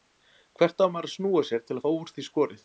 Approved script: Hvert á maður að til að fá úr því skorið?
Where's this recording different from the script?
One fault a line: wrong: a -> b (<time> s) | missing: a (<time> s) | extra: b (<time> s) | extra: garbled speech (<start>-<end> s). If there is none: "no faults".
extra: snúa sér (1.2 s)